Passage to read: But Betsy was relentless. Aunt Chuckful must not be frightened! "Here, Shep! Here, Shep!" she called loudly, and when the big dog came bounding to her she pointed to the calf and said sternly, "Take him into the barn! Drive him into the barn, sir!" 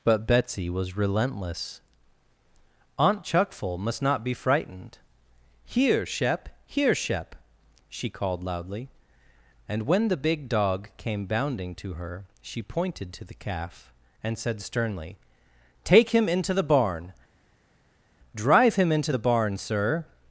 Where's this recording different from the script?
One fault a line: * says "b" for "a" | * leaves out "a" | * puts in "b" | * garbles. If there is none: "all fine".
all fine